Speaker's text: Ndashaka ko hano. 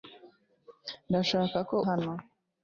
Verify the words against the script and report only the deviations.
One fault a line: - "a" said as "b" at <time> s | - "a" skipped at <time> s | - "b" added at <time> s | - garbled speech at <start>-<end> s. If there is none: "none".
none